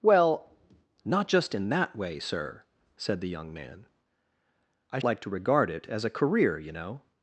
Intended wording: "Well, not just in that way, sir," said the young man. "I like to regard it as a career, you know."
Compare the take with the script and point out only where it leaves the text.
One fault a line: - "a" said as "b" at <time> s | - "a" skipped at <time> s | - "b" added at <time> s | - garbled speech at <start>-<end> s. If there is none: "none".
none